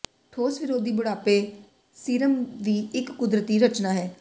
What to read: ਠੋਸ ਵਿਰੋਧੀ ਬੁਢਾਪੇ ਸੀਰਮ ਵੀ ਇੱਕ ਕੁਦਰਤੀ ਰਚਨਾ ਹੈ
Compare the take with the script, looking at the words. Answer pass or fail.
pass